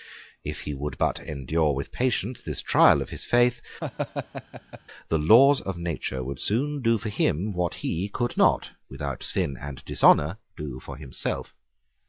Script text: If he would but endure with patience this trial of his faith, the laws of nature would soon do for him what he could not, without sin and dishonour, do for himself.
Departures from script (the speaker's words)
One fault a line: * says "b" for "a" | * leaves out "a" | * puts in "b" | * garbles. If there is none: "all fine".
all fine